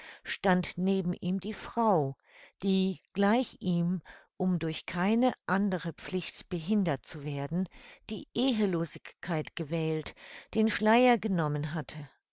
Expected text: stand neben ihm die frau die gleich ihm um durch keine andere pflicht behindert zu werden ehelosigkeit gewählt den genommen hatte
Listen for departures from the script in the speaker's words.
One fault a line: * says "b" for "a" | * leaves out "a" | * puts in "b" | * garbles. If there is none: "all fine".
* puts in "die"
* puts in "schleier"